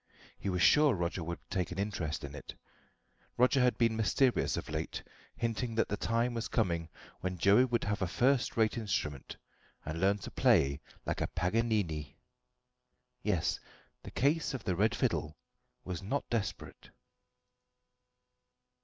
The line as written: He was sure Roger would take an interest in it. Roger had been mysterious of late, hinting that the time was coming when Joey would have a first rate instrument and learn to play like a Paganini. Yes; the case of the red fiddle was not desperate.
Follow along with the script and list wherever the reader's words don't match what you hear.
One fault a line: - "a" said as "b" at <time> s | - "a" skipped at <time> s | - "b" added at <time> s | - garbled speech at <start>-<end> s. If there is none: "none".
none